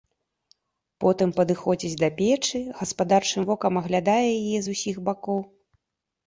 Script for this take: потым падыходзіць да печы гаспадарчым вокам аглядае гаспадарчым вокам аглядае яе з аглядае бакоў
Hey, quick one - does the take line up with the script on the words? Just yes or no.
no